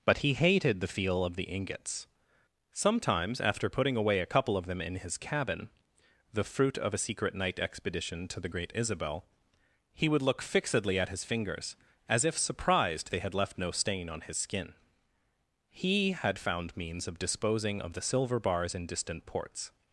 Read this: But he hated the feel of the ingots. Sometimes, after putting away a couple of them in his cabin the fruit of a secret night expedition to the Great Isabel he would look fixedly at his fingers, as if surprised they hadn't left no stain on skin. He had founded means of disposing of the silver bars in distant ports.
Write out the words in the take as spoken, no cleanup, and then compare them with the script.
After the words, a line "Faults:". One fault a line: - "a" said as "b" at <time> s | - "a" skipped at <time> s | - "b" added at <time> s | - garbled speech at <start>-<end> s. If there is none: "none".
But he hated the feel of the ingots. Sometimes, after putting away a couple of them in his cabin the fruit of a secret night expedition to the Great Isabel he would look fixedly at his fingers, as if surprised they had left no stain on his skin. He had found means of disposing of the silver bars in distant ports.
Faults:
- "hadn't" said as "had" at 13.2 s
- "his" added at 14.2 s
- "founded" said as "found" at 16.4 s